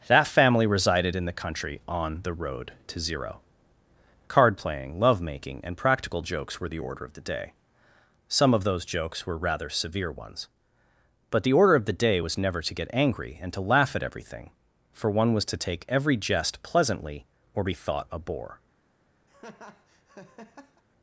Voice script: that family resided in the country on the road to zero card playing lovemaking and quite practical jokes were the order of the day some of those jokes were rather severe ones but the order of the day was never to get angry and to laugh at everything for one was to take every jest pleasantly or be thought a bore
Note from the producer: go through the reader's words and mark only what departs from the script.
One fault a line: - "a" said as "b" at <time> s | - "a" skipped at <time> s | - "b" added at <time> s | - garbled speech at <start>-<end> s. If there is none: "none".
- "quite" skipped at 5.8 s